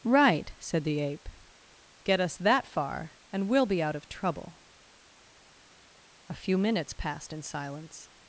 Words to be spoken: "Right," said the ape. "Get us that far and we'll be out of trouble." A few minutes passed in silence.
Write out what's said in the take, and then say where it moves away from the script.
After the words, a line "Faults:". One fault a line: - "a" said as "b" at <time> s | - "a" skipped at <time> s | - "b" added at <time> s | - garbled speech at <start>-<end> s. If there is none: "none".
"Right," said the ape. "Get us that far and we'll be out of trouble." A few minutes passed in silence.
Faults:
none